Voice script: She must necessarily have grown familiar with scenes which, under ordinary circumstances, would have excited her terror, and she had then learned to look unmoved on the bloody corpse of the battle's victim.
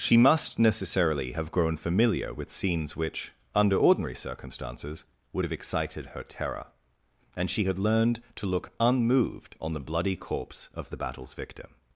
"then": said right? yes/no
no